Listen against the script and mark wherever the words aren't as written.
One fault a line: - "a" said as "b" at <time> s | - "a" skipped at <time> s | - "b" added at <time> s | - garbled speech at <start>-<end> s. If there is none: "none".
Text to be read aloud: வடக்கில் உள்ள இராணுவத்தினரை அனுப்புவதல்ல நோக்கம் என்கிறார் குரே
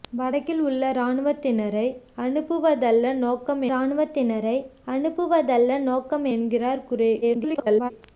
- "இராணுவத்தினரை அனுப்புவதல்ல நோக்கம்" added at 3.7 s
- garbled speech at 7.2-7.9 s